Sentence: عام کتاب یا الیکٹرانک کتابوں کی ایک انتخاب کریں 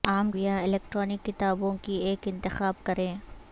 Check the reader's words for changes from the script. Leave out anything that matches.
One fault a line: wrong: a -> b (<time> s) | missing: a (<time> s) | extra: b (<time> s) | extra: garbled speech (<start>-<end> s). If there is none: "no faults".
missing: کتاب (0.3 s)